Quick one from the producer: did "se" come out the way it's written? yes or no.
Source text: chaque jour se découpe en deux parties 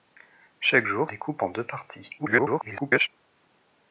no